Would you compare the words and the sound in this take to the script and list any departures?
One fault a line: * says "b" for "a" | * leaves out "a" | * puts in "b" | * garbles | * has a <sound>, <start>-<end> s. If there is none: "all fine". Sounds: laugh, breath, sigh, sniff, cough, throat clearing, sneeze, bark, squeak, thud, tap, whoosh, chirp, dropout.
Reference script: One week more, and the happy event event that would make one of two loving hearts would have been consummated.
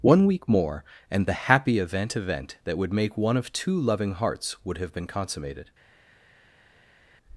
all fine